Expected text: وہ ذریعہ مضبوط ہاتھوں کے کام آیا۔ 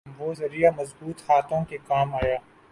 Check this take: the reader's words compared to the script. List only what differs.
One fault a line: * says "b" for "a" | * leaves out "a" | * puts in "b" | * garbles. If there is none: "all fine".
all fine